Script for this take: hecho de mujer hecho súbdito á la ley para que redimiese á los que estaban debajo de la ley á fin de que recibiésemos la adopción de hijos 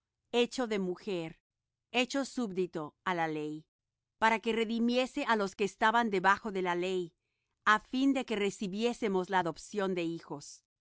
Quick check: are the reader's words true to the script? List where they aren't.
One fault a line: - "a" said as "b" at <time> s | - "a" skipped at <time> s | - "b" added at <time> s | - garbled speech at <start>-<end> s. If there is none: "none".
none